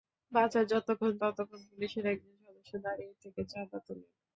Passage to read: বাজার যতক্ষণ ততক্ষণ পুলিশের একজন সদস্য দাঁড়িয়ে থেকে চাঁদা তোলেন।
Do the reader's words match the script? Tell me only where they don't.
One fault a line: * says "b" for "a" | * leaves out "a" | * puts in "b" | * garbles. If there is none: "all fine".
all fine